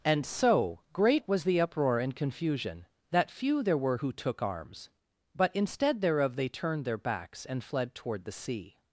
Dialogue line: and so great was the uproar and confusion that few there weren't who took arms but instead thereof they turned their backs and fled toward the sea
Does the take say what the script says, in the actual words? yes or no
no